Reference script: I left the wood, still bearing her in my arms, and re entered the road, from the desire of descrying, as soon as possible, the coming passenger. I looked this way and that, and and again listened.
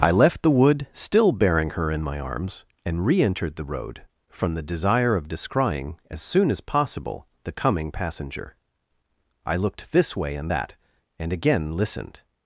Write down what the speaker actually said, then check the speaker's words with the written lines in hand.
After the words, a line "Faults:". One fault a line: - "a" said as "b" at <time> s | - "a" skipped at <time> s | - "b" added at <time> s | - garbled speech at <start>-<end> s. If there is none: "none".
I left the wood, still bearing her in my arms, and re entered the road, from the desire of descrying, as soon as possible, the coming passenger. I looked this way and that, and again listened.
Faults:
- "and" skipped at 11.3 s